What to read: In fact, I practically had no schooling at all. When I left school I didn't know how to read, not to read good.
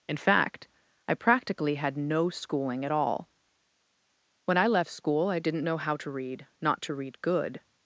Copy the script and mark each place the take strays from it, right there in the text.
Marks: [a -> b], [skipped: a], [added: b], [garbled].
In fact, I practically had no schooling at all. When I left school I didn't know how to read, not to read good.